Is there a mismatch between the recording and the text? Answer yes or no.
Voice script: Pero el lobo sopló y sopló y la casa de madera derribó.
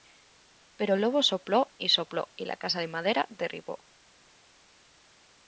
no